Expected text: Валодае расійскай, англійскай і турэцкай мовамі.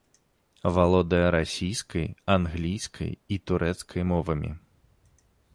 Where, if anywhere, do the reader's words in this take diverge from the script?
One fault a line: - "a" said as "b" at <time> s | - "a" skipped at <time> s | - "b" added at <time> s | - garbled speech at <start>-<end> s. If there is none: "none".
none